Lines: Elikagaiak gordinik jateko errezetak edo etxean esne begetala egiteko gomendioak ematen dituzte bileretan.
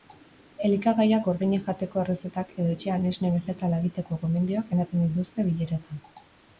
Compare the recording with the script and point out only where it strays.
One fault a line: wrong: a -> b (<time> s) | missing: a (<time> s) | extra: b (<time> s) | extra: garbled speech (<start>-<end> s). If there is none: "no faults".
no faults